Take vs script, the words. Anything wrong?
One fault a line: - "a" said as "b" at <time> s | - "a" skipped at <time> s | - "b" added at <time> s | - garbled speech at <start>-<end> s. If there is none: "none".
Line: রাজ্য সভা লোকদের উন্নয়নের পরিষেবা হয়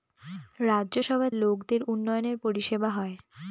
none